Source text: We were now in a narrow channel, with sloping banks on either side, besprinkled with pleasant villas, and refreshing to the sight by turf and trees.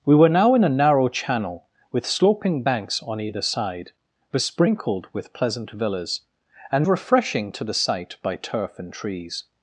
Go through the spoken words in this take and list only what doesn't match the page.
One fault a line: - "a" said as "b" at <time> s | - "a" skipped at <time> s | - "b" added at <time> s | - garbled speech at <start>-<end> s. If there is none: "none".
none